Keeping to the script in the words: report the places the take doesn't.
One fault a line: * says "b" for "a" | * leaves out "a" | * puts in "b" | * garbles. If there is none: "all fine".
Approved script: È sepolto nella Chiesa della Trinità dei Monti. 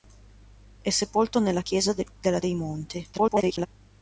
* leaves out "Trinità"
* garbles